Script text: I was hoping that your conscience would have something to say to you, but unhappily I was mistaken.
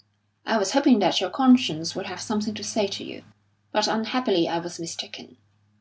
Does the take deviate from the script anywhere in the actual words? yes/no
no